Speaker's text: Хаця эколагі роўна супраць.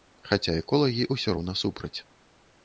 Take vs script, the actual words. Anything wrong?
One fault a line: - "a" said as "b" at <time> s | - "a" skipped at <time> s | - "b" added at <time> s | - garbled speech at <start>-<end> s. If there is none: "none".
- "ўсё" added at 1.1 s